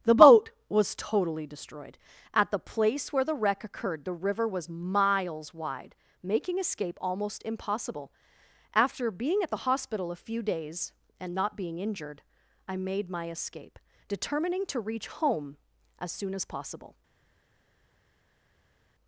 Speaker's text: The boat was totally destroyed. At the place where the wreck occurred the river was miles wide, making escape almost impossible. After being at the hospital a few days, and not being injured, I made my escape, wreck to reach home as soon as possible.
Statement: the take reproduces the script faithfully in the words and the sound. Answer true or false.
false